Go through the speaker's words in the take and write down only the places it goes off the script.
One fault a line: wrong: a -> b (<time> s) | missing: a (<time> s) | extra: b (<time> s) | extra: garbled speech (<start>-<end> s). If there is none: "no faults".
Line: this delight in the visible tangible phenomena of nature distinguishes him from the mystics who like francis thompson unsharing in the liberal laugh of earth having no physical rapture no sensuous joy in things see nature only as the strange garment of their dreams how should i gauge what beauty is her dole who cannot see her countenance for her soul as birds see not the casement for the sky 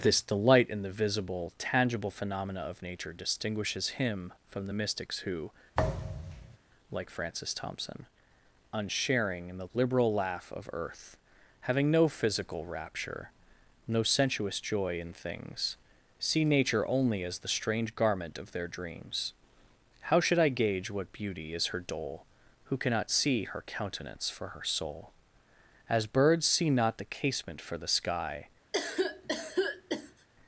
no faults